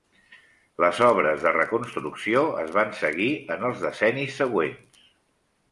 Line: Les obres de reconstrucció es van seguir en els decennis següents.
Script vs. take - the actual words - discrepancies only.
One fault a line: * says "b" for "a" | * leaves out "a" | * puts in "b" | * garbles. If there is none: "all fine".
all fine